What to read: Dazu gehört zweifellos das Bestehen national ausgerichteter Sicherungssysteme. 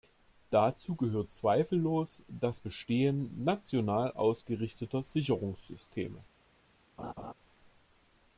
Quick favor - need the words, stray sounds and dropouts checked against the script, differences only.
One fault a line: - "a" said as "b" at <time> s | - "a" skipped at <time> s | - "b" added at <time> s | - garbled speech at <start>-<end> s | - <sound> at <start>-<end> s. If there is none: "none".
- laugh at 7.0-7.3 s